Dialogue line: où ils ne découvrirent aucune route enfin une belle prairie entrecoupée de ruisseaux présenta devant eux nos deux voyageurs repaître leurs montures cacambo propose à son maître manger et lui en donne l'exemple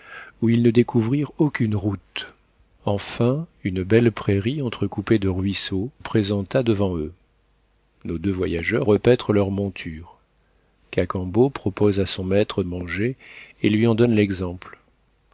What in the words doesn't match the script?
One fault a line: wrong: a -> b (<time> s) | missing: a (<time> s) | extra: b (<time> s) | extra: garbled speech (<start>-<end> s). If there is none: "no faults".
no faults